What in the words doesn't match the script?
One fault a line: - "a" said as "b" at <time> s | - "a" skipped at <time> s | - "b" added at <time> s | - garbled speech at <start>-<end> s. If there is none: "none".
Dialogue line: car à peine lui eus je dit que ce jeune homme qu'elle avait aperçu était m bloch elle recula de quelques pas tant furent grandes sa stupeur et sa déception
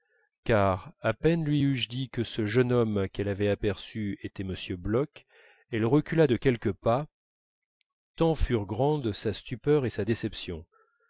none